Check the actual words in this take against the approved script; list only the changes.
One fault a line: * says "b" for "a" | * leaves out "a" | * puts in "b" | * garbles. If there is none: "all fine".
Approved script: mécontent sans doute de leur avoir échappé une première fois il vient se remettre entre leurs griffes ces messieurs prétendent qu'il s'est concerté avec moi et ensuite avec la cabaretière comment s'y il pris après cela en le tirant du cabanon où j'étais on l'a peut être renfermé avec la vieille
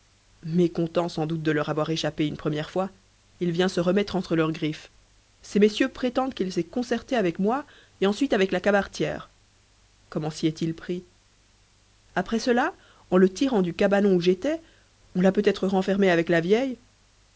* puts in "est"